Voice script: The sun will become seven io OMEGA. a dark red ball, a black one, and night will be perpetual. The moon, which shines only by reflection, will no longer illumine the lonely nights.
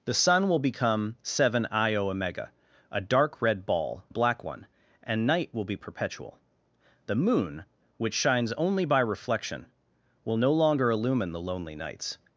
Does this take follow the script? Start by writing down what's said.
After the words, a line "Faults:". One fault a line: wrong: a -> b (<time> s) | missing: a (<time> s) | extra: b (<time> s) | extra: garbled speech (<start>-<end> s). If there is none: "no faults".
The sun will become seven io OMEGA. a dark red ball, a black one, and night will be perpetual. The moon, which shines only by reflection, will no longer illumine the lonely nights.
Faults:
no faults